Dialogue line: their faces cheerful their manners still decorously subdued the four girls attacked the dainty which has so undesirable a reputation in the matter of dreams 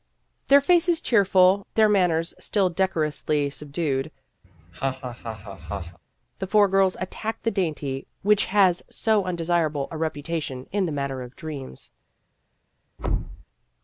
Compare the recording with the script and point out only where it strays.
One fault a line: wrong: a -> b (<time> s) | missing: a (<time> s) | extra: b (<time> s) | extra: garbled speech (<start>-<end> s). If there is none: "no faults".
no faults